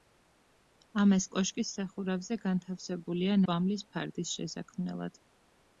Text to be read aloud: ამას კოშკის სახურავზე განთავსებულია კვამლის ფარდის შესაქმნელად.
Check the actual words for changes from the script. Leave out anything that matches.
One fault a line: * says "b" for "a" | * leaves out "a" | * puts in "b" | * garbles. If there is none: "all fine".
all fine